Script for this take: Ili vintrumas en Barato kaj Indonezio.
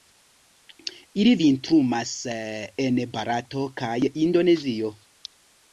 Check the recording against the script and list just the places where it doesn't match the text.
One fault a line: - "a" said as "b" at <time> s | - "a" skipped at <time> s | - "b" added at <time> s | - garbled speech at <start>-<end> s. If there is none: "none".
none